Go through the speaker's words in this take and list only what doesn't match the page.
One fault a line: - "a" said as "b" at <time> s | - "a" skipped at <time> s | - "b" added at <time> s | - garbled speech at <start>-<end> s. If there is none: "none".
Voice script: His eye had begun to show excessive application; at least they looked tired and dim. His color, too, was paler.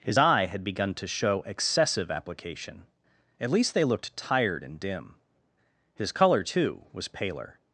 none